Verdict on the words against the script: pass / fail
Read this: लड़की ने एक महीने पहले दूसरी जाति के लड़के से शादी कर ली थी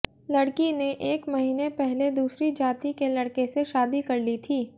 pass